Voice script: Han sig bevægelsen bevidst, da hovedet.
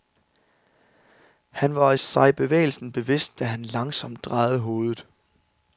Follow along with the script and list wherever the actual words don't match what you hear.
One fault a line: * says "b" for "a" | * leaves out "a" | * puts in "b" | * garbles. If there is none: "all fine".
* puts in "var"
* puts in "han langsomt drejede"